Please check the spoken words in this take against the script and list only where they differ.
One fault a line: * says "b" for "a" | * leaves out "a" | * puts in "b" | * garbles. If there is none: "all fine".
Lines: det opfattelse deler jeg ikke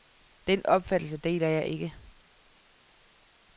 * says "den" for "det"